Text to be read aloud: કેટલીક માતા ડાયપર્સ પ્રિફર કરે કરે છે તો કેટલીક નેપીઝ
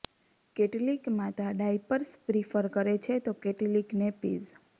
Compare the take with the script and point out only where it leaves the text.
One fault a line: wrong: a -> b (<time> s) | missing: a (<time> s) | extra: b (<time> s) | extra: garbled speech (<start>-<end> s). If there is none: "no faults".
missing: કરે (3.0 s)